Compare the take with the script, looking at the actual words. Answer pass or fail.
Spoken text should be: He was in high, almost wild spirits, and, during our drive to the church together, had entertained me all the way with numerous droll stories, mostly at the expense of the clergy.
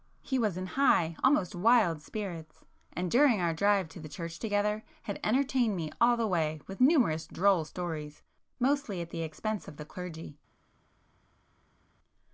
pass